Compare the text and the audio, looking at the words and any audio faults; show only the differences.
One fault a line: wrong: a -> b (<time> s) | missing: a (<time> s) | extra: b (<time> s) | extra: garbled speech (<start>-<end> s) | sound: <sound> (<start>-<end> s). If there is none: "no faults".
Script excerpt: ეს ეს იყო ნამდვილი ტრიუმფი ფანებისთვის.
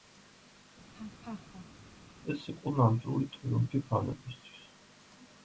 sound: laugh (0.9-2.1 s)
missing: ეს (2.5 s)